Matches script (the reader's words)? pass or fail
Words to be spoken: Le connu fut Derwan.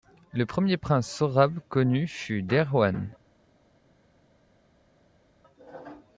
fail